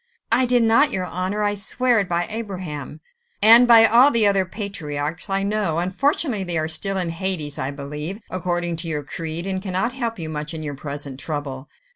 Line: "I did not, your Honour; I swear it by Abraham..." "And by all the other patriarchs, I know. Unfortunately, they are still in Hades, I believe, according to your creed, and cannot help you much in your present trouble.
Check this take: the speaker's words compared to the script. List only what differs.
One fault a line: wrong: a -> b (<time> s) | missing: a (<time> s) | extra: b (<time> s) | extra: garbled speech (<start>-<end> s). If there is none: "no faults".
no faults